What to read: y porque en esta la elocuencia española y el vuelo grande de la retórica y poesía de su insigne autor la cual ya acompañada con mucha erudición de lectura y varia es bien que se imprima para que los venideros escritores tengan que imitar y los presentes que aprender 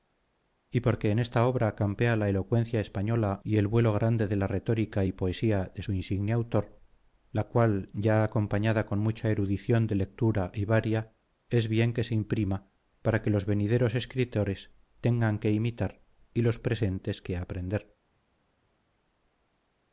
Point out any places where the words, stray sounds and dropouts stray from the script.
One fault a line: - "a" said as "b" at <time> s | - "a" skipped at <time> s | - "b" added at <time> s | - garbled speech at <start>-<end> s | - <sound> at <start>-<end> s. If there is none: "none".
- "obra campea" added at 1.4 s